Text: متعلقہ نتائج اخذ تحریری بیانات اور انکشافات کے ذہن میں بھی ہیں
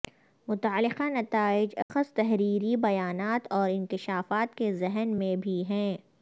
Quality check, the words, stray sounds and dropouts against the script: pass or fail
fail